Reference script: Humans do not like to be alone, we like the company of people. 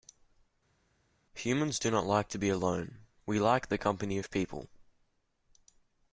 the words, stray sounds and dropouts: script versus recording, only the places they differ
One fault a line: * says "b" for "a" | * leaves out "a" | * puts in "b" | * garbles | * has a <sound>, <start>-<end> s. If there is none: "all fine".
all fine